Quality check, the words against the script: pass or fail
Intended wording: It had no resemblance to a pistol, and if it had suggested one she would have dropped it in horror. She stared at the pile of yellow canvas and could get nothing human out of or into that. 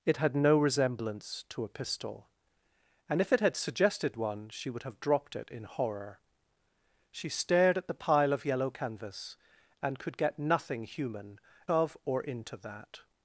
fail